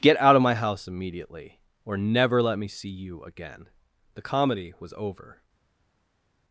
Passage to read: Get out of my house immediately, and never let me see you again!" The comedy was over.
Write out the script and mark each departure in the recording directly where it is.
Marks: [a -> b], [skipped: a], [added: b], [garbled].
Get out of my house immediately, [and -> or] never let me see you again!" The comedy was over.